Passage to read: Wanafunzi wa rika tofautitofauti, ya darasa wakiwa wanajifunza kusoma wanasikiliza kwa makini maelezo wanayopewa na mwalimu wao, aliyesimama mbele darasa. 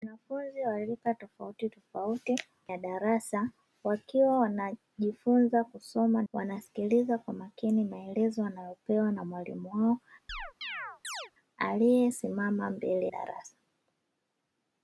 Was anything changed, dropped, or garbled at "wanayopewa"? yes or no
no